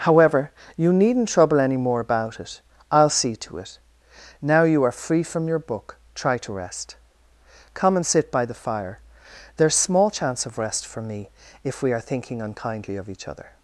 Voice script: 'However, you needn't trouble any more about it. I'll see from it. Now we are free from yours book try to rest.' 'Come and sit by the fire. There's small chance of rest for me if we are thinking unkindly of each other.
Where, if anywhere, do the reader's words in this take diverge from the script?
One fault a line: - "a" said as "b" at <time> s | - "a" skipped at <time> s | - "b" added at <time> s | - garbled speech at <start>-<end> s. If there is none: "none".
- "from" said as "to" at 3.4 s
- "we" said as "you" at 4.6 s
- "yours" said as "your" at 5.5 s